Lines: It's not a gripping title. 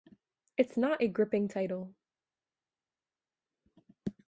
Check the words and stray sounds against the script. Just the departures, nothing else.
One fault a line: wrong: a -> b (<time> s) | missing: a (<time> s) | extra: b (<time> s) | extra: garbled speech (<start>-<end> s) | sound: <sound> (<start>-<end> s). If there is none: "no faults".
no faults